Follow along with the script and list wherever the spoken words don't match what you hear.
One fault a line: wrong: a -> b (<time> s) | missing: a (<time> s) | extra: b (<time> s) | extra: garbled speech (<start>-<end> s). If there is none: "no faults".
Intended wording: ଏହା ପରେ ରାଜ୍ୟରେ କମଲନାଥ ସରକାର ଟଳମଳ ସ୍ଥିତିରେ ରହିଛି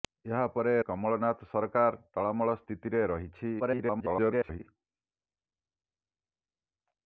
missing: ରାଜ୍ୟରେ (0.7 s)
extra: garbled speech (3.6-4.6 s)